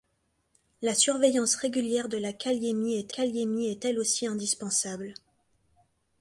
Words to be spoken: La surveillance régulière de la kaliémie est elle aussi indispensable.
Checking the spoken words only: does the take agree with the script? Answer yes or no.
no